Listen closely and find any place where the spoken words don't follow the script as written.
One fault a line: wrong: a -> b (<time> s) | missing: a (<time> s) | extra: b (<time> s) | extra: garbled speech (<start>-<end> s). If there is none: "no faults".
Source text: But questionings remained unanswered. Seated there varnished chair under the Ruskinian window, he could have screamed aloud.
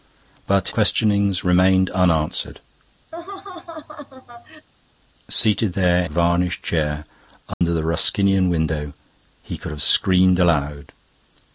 no faults